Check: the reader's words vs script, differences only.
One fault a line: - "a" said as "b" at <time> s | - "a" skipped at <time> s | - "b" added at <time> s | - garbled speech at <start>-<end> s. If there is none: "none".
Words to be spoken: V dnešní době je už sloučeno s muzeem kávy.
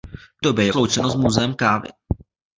- "dnešní" skipped at 0.4 s
- "už" skipped at 0.7 s